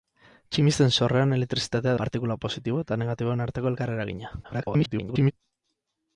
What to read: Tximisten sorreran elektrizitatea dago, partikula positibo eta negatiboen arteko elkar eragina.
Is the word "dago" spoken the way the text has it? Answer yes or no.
no